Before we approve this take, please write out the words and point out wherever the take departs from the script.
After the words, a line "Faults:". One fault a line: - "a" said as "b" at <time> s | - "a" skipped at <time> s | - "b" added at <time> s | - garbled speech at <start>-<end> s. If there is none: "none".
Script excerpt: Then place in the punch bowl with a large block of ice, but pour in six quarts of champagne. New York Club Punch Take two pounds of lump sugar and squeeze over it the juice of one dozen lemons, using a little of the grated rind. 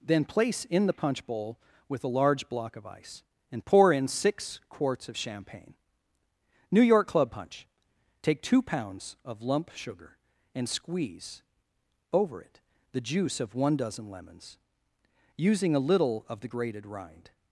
Then place in the punch bowl with a large block of ice, and pour in six quarts of champagne. New York Club Punch Take two pounds of lump sugar and squeeze over it the juice of one dozen lemons, using a little of the grated rind.
Faults:
- "but" said as "and" at 3.5 s